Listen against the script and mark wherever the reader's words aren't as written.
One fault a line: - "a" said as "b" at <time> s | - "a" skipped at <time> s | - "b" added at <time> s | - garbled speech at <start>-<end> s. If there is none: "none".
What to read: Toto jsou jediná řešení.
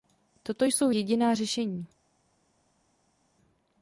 none